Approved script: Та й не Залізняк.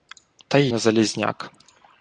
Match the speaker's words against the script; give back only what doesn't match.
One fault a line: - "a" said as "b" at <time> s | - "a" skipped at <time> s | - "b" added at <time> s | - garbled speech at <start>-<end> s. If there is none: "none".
none